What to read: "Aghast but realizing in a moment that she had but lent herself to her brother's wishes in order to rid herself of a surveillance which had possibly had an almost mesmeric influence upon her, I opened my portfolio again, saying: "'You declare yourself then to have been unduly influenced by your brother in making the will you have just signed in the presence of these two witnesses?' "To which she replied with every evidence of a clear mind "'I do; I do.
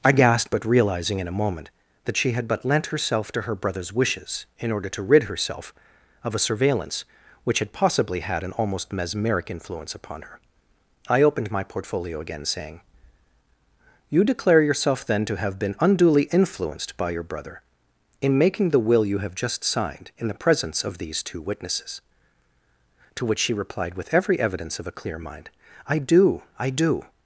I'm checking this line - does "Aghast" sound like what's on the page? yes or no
no